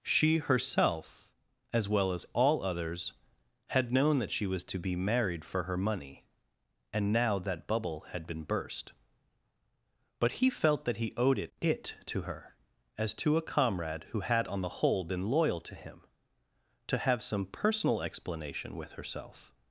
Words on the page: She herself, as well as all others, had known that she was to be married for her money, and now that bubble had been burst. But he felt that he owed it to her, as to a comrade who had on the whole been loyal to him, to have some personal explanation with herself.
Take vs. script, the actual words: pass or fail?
fail